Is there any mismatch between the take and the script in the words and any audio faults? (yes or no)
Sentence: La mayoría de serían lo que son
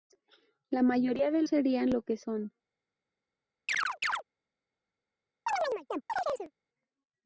yes